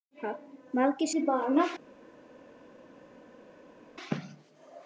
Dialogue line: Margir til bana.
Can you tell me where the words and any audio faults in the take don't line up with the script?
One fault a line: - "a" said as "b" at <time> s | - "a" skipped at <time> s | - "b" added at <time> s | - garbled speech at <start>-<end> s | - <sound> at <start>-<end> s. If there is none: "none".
none